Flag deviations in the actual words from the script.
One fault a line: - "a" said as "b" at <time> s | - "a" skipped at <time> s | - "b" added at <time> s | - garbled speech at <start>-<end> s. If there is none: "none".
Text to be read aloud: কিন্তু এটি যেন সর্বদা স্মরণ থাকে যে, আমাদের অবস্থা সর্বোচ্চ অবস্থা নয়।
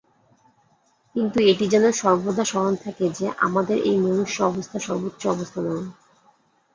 - "এই মনুষ্য" added at 3.8 s